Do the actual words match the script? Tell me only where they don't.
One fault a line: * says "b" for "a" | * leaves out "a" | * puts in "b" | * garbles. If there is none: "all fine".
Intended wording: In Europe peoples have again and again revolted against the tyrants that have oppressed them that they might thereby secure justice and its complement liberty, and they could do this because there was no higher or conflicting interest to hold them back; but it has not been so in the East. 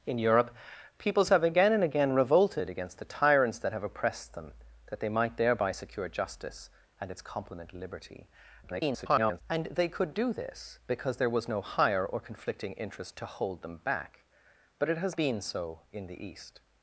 * garbles
* leaves out "not"